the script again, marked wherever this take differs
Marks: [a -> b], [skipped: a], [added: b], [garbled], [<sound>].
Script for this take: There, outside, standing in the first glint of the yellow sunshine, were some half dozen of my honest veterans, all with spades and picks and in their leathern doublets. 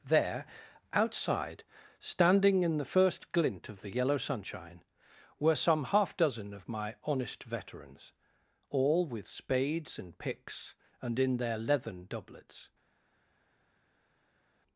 There, outside, standing in the first glint of the yellow sunshine, were some half dozen of my honest veterans, all with spades and picks and in their leathern doublets.